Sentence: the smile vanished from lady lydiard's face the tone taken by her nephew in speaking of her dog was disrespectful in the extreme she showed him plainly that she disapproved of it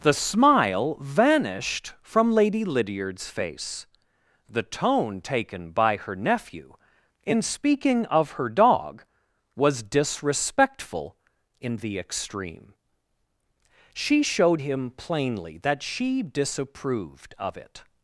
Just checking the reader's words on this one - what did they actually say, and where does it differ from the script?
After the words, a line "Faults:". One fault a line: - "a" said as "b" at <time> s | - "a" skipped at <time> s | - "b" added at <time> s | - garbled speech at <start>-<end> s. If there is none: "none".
the smile vanished from lady lydiard's face the tone taken by her nephew in speaking of her dog was disrespectful in the extreme she showed him plainly that she disapproved of it
Faults:
none